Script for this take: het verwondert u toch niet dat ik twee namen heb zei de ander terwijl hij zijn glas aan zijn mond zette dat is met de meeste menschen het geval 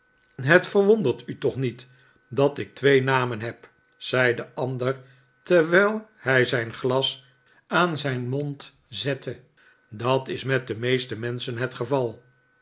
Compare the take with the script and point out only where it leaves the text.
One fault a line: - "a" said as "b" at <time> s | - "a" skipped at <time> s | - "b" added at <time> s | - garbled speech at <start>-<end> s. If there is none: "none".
none